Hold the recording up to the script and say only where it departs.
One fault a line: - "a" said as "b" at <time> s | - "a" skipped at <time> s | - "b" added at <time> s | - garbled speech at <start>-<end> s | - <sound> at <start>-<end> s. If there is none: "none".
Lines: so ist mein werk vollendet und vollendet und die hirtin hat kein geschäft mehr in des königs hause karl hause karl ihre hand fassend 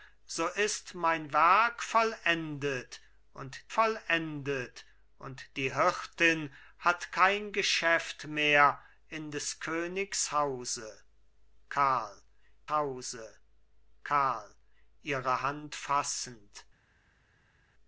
none